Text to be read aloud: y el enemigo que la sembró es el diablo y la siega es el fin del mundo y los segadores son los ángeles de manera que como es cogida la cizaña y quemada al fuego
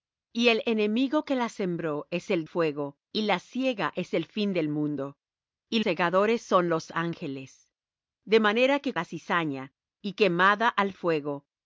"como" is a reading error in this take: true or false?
true